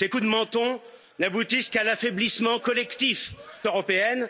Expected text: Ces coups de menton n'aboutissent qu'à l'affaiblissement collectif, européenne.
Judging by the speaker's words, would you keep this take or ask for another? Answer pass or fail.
pass